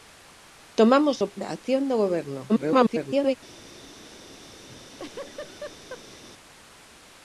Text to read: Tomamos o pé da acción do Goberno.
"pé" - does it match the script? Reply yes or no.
no